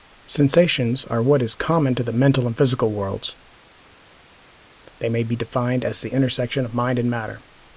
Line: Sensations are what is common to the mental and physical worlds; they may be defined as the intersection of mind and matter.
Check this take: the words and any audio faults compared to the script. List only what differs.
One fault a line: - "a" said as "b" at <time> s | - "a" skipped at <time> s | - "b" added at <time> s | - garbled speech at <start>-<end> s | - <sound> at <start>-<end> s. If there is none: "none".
none